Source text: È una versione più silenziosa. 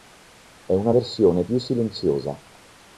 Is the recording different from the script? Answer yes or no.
no